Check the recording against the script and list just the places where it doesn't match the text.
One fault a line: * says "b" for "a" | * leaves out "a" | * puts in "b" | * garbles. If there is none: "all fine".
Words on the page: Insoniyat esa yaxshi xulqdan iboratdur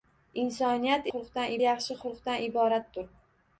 * says "xulqdan" for "esa"